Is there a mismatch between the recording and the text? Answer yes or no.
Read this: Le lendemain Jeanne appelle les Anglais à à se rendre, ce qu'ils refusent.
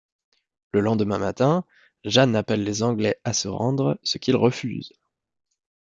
yes